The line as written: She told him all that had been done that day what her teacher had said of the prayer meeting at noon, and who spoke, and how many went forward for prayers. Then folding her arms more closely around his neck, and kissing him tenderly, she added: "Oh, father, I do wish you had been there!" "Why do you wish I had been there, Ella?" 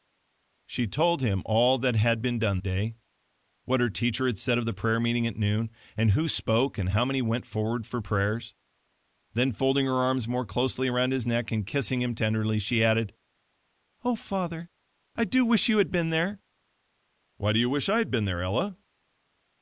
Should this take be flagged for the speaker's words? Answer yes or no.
yes